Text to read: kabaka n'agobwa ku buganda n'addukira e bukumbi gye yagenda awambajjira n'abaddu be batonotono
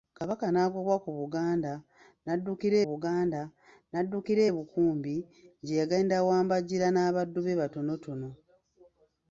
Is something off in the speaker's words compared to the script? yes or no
yes